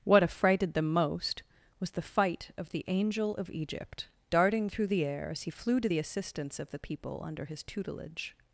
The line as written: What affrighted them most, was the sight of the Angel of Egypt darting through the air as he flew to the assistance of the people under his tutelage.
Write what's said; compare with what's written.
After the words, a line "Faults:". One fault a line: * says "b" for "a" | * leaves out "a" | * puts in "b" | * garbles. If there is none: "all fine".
What affrighted them most, was the fight of the Angel of Egypt darting through the air as he flew to the assistance of the people under his tutelage.
Faults:
* says "fight" for "sight"